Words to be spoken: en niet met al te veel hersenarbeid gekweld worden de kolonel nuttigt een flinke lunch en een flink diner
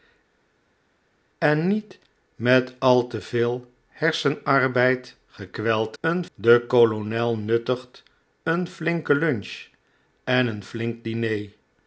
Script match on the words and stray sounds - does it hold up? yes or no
no